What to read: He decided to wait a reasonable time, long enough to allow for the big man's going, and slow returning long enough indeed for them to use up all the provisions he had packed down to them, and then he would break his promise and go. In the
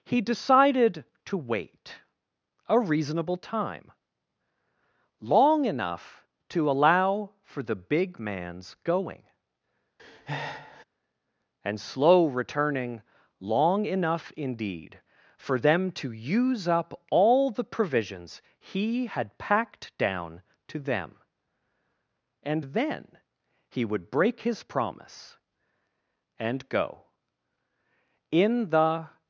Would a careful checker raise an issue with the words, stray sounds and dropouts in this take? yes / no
yes